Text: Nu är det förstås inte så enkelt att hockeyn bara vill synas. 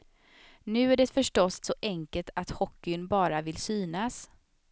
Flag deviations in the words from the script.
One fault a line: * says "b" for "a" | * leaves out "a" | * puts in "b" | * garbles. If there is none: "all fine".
* leaves out "inte"